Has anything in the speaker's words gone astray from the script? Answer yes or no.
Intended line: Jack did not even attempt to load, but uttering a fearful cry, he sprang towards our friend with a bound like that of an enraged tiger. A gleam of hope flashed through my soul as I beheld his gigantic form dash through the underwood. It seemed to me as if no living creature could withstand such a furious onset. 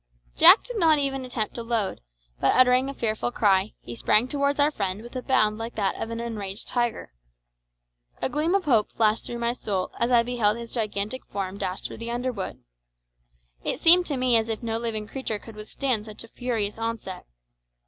no